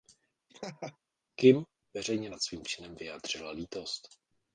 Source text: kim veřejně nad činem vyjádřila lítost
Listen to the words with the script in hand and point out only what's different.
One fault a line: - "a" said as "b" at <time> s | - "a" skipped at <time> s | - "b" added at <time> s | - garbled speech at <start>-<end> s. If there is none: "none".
- "svým" added at 2.4 s